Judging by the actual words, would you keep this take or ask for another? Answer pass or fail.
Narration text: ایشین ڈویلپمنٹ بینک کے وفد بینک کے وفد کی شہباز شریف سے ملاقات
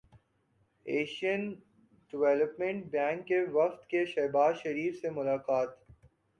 fail